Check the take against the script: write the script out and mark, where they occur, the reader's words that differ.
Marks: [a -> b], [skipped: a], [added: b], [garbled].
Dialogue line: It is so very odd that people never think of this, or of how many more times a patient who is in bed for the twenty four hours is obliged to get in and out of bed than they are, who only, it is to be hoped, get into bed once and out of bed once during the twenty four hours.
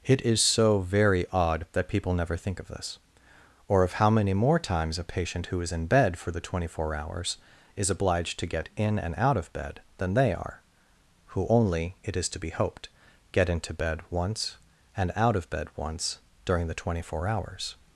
It is so very odd that people never think of this, or of how many more times a patient who is in bed for the twenty four hours is obliged to get in and out of bed than they are, who only, it is to be hoped, get into bed once and out of bed once during the twenty four hours.